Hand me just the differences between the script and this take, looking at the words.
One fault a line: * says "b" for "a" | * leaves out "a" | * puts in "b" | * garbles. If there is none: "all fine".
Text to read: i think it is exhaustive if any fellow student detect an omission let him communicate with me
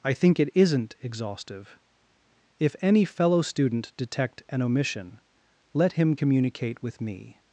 * says "isn't" for "is"